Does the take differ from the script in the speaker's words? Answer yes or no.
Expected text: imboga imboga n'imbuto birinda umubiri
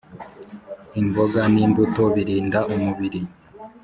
yes